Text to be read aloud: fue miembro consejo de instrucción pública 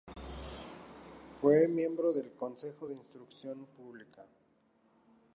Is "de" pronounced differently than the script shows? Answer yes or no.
no